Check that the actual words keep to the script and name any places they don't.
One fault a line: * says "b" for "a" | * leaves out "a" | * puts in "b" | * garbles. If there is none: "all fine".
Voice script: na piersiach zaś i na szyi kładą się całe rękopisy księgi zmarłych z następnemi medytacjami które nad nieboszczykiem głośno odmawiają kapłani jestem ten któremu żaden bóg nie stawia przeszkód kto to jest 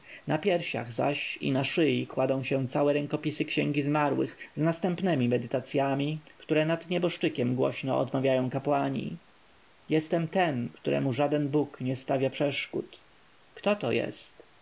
all fine